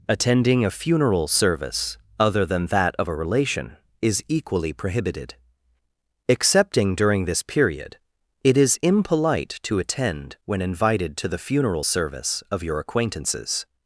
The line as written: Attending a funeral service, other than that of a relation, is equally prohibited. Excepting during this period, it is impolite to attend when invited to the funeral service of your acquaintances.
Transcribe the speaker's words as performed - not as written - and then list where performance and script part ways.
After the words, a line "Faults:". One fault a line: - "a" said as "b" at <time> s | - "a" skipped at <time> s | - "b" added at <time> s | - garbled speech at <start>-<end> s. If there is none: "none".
Attending a funeral service, other than that of a relation, is equally prohibited. Excepting during this period, it is impolite to attend when invited to the funeral service of your acquaintances.
Faults:
none